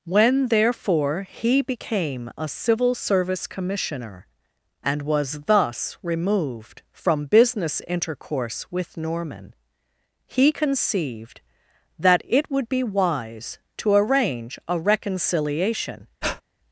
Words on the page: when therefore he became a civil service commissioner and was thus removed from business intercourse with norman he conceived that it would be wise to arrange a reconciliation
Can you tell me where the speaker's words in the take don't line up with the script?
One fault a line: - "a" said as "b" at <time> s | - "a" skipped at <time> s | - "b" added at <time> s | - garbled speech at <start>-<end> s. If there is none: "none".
none